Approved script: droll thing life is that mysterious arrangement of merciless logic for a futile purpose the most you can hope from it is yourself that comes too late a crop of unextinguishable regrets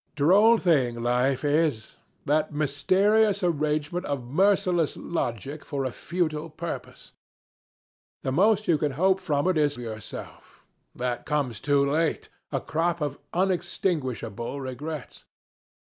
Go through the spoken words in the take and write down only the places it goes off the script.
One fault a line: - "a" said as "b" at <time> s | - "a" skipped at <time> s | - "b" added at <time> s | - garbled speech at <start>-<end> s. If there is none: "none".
none